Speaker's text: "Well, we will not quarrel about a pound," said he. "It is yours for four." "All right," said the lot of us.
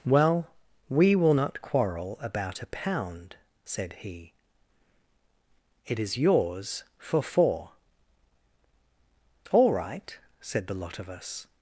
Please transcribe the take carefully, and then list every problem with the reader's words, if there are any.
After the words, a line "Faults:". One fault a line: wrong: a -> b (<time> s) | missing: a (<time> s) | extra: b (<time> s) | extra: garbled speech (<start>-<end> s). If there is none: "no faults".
"Well, we will not quarrel about a pound," said he. "It is yours for four." "All right," said the lot of us.
Faults:
no faults